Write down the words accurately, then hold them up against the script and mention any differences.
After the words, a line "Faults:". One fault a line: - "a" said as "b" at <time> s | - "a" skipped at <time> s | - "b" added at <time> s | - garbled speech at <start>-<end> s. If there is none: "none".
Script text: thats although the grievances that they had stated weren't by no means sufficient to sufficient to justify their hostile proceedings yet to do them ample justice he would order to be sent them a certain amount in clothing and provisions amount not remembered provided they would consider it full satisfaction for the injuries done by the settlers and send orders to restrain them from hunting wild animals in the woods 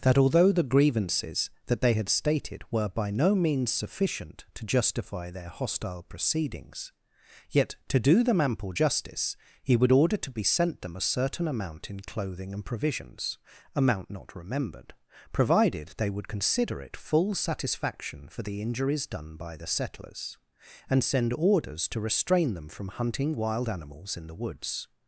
that although the grievances that they had stated were by no means sufficient to justify their hostile proceedings yet to do them ample justice he would order to be sent them a certain amount in clothing and provisions amount not remembered provided they would consider it full satisfaction for the injuries done by the settlers and send orders to restrain them from hunting wild animals in the woods
Faults:
- "thats" said as "that" at 0.0 s
- "weren't" said as "were" at 2.7 s
- "sufficient to" skipped at 4.7 s